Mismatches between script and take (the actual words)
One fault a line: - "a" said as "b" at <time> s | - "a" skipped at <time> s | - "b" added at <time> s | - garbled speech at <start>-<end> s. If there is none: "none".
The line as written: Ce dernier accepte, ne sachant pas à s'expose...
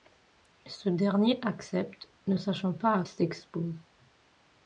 none